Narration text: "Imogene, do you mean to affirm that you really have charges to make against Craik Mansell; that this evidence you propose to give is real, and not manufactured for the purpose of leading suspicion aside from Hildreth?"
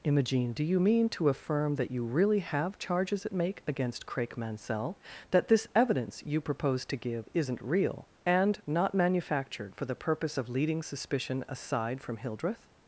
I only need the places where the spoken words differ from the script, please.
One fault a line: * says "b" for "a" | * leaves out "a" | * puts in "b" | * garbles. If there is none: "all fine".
* says "at" for "to"
* says "isn't" for "is"